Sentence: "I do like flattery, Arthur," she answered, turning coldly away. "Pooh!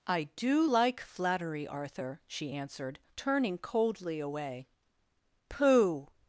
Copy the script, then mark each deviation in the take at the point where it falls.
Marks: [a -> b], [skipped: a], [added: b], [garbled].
"I do like flattery, Arthur," she answered, turning coldly away. "Pooh!